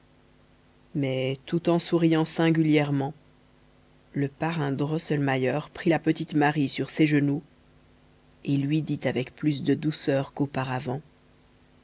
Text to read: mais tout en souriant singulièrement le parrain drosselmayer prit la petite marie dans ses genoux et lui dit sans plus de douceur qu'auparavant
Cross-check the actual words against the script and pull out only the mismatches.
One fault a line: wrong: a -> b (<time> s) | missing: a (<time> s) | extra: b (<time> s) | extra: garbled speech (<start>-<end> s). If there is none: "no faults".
wrong: dans -> sur (6.7 s)
wrong: sans -> avec (9.0 s)